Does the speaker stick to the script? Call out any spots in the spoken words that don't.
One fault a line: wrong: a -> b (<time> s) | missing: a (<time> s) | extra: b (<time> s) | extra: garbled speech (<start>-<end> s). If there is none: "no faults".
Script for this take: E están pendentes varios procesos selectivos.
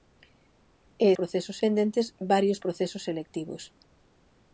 wrong: están -> procesos (1.2 s)